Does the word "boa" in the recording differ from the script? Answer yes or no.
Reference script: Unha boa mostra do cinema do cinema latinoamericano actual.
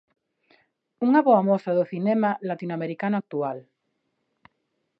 no